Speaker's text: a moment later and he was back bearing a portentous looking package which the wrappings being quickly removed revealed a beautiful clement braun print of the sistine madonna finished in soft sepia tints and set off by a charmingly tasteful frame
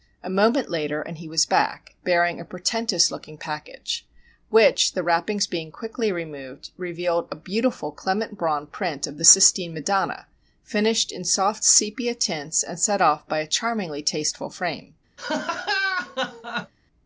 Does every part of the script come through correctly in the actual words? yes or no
yes